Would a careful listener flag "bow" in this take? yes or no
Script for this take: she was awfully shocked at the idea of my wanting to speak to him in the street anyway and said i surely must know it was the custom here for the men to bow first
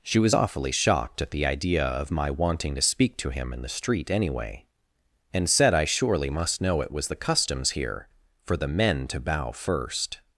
no